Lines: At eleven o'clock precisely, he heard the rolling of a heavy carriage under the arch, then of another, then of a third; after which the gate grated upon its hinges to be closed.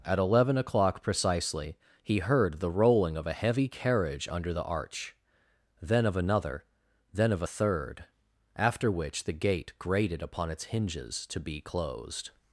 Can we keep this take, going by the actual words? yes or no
yes